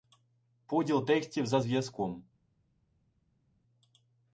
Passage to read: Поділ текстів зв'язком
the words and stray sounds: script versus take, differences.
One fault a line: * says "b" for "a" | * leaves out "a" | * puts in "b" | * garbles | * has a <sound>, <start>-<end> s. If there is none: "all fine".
* puts in "за"